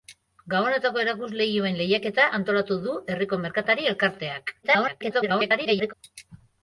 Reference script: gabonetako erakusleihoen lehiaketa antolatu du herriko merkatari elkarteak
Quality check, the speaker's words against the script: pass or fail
fail